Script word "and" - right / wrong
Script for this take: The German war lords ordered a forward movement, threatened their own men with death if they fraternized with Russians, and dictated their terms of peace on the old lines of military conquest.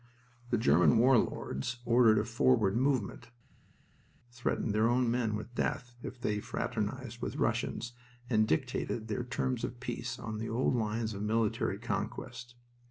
right